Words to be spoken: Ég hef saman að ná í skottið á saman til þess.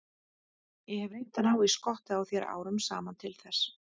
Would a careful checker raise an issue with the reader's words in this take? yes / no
yes